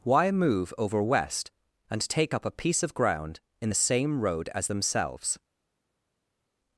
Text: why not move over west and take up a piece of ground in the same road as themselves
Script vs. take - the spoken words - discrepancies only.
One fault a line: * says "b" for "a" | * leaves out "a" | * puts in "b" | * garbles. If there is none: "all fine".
* leaves out "not"